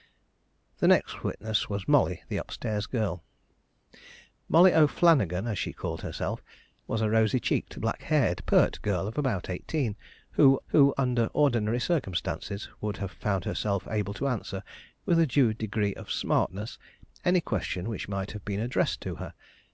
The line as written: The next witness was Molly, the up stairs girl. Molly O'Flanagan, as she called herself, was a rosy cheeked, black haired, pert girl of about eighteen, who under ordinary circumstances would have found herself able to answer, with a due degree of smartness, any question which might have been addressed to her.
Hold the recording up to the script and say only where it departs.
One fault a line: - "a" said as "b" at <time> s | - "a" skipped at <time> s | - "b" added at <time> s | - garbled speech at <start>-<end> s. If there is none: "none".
- "who" added at 10.7 s